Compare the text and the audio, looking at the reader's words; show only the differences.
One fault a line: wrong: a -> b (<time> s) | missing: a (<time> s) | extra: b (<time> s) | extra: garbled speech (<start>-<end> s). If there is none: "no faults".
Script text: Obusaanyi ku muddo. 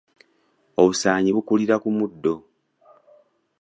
extra: bukulira (1.3 s)